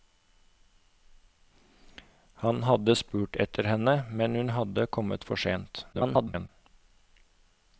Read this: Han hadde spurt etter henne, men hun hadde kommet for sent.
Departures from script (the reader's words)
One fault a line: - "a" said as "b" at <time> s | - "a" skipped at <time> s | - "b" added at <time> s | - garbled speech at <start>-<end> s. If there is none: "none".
- garbled speech at 5.9-6.5 s